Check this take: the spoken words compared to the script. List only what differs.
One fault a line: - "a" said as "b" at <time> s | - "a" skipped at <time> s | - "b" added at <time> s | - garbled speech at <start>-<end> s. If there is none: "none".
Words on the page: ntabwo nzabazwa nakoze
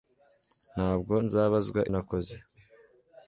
none